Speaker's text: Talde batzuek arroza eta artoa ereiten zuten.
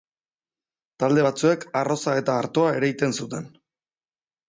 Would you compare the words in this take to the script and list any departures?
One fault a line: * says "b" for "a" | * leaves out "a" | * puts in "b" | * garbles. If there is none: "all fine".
all fine